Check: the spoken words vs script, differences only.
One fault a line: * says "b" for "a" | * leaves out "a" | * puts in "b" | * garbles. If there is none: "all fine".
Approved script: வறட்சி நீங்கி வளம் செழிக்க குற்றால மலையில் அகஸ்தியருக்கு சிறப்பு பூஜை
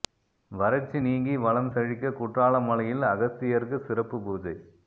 all fine